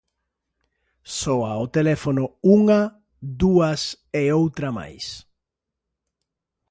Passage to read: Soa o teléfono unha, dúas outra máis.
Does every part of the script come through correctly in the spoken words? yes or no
no